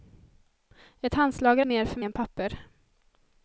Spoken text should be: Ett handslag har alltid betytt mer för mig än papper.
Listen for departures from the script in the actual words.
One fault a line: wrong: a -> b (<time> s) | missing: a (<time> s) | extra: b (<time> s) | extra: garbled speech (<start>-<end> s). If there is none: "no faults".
missing: alltid betytt (1.6 s)
missing: mig (2.0 s)